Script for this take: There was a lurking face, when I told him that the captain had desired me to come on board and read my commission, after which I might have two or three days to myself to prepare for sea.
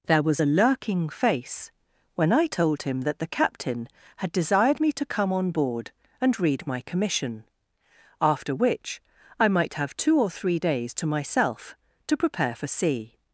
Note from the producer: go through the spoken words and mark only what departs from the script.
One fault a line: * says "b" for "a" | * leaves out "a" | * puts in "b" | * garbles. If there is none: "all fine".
all fine